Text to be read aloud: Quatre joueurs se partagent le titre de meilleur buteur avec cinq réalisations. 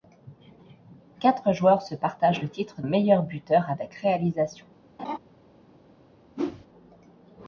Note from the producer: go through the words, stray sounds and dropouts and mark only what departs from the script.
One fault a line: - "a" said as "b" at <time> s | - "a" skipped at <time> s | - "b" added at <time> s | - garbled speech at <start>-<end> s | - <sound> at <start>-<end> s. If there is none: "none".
- "de" skipped at 2.8 s
- "cinq" skipped at 3.9 s
- laugh at 5.0-5.2 s
- whoosh at 6.3-6.7 s